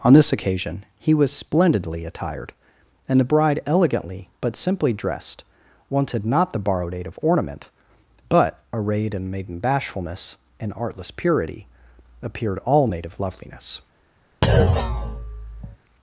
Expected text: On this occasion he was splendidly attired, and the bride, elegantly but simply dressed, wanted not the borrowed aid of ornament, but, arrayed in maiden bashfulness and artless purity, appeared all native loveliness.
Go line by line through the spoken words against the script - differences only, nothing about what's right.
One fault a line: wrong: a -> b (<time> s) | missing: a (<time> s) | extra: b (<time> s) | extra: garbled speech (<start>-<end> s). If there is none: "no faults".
no faults